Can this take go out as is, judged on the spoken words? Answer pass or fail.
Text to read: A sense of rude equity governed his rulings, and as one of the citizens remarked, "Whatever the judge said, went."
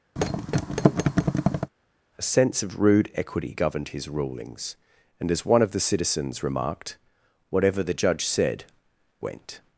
pass